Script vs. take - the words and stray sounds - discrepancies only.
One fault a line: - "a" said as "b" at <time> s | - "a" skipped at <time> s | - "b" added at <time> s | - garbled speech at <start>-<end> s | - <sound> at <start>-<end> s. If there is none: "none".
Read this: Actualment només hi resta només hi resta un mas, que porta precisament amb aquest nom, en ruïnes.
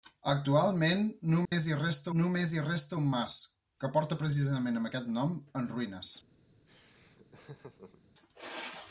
- dropout at 1.5-1.5 s
- laugh at 6.7-8.0 s